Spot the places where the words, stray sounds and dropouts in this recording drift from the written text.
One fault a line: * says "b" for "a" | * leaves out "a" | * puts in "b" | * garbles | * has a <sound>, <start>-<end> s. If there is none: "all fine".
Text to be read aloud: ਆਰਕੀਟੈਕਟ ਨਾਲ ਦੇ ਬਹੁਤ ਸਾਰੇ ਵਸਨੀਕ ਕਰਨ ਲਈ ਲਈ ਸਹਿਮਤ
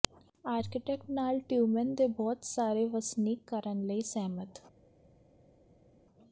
* puts in "ਟਿਯੂਮੇਨ"
* leaves out "ਲਈ"